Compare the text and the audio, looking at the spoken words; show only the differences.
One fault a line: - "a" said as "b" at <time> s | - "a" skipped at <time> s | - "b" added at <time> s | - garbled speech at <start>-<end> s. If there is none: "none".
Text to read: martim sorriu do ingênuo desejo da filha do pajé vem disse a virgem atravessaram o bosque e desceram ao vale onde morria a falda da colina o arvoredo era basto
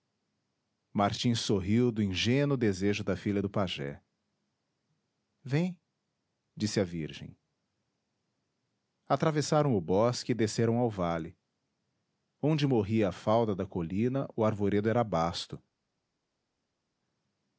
none